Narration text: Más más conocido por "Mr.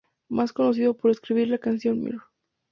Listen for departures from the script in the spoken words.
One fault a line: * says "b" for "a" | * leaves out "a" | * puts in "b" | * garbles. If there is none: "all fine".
* leaves out "más"
* puts in "escribir la canción"